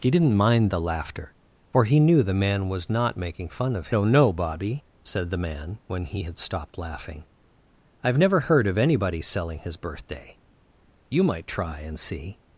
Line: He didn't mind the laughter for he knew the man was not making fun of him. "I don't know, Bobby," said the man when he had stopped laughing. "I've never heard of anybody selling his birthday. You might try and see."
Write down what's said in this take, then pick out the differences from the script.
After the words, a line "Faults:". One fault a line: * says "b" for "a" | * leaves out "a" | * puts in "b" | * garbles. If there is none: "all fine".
He didn't mind the laughter for he knew the man was not making fun of don't know, Bobby," said the man when he had stopped laughing. "I've never heard of anybody selling his birthday. You might try and see."
Faults:
* leaves out "him I"